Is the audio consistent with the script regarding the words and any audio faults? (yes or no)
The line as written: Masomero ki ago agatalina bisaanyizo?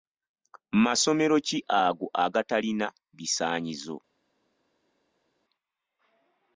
yes